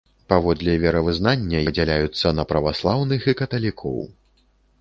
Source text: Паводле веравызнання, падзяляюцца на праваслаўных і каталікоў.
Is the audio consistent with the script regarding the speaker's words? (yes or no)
yes